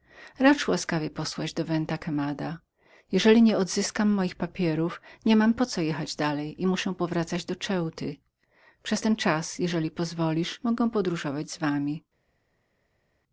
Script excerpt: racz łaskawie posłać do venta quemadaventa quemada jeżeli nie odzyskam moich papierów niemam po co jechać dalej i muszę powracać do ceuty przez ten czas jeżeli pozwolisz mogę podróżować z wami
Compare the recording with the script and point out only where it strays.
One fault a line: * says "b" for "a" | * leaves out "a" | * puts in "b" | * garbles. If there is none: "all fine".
all fine